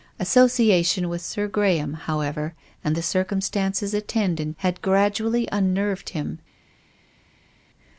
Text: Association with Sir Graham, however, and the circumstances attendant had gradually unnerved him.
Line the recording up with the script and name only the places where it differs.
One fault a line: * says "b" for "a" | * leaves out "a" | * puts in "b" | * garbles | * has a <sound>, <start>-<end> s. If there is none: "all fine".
all fine